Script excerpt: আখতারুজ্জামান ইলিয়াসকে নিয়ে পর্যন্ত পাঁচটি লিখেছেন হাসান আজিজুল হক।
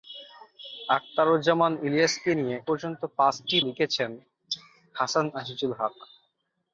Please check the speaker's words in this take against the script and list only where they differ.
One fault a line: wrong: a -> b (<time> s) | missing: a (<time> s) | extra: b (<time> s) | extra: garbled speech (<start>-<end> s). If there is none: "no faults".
no faults